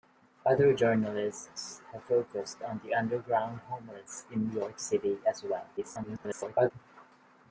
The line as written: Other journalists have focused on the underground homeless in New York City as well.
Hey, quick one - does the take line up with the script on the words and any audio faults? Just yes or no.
no